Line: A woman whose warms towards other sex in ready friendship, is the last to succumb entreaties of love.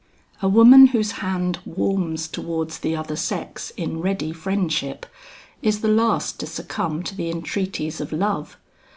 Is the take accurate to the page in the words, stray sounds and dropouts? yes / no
no